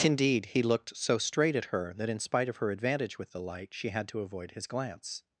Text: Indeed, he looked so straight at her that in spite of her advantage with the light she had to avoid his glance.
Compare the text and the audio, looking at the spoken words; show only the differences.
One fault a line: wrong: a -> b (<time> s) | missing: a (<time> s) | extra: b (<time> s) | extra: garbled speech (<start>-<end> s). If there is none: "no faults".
no faults